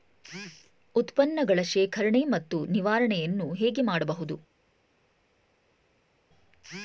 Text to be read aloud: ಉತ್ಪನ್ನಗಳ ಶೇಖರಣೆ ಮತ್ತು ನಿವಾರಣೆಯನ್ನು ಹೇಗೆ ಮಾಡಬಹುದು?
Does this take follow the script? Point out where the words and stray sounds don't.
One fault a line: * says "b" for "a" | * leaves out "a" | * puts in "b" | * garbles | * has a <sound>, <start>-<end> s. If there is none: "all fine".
all fine